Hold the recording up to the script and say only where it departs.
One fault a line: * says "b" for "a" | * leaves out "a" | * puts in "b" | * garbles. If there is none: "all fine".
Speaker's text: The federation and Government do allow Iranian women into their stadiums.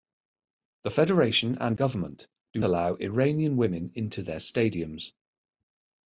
all fine